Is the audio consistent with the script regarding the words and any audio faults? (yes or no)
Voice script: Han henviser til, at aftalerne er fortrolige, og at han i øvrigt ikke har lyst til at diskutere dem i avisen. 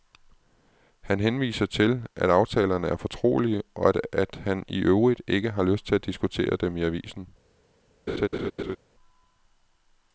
no